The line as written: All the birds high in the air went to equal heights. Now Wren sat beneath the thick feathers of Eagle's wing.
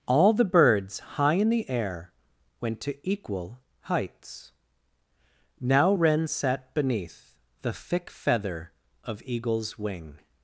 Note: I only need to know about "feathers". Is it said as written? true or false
false